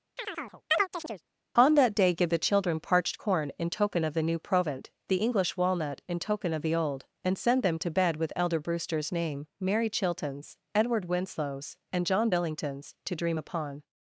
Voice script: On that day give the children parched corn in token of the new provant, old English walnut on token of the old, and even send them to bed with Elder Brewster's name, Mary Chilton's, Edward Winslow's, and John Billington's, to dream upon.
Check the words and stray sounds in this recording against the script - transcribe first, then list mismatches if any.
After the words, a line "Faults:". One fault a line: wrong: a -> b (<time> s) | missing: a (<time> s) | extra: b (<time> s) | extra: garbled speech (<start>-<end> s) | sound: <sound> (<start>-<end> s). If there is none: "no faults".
On that day give the children parched corn in token of the new provant, the English walnut in token of the old, and send them to bed with Elder Brewster's name, Mary Chilton's, Edward Winslow's, and John Billington's, to dream upon.
Faults:
sound: chirp (0.2-1.2 s)
wrong: old -> the (5.1 s)
wrong: on -> in (6.1 s)
missing: even (7.4 s)